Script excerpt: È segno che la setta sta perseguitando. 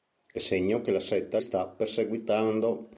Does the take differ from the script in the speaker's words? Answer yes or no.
no